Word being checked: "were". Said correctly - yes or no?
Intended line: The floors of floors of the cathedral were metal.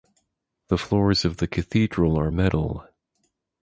no